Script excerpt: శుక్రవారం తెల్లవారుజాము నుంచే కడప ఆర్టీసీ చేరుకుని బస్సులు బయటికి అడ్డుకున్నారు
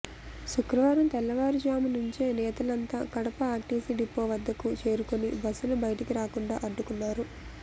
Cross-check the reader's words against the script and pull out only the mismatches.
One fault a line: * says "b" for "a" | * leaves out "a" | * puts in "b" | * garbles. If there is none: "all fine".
* puts in "నేతలంతా"
* puts in "డిపో వద్దకు"
* puts in "రాకుండా"